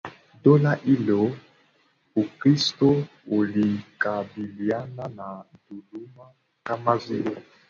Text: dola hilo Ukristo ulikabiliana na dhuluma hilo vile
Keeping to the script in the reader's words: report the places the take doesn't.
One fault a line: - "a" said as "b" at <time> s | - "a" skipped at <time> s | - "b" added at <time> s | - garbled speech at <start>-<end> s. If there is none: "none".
- "hilo" said as "kama" at 6.6 s